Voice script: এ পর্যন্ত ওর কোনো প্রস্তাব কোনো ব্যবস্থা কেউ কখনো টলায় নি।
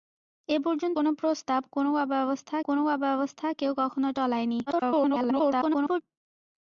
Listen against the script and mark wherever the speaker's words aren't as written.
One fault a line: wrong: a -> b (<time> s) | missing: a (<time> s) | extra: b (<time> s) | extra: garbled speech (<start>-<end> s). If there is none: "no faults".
wrong: ওর -> কোনো প্রস্তাব (0.9 s)
wrong: প্রস্তাব -> ব্যবস্থা (2.1 s)
extra: garbled speech (4.7-6.0 s)